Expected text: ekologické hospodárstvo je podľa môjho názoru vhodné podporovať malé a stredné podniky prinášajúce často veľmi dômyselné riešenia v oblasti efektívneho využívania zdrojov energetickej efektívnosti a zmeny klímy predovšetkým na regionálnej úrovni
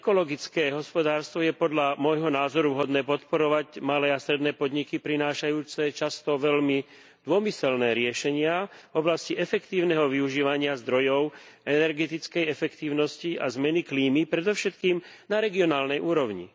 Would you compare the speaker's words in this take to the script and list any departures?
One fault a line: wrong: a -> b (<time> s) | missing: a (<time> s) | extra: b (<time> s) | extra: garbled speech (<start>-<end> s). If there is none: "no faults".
no faults